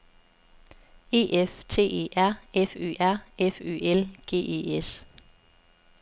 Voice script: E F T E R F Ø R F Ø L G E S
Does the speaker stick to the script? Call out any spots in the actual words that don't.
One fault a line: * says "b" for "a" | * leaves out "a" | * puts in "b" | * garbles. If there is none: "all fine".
all fine